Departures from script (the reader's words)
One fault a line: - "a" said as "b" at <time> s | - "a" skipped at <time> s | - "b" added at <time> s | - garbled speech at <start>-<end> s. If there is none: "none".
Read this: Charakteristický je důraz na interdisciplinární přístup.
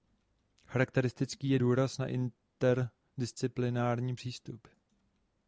none